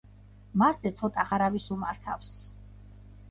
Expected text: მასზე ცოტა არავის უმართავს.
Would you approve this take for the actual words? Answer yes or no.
yes